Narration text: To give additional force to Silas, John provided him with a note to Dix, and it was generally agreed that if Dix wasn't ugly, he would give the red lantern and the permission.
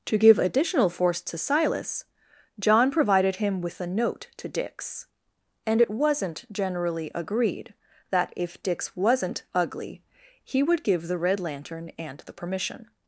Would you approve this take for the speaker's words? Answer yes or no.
no